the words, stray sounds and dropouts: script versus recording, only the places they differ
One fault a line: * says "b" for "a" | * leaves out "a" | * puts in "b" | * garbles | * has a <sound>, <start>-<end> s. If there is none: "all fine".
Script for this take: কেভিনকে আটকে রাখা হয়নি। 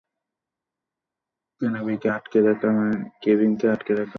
all fine